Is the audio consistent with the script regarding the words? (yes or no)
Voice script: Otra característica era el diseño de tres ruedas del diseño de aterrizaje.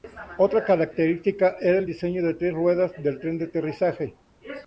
no